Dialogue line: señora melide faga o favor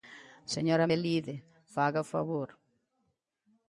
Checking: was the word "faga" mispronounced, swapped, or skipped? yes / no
no